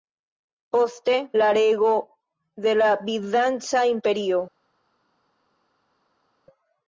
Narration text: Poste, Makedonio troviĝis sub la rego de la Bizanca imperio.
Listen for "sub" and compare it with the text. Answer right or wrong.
wrong